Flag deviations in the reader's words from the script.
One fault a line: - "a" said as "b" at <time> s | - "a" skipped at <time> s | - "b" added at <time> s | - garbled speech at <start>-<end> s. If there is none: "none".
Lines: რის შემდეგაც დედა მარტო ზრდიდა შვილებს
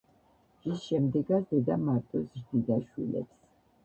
none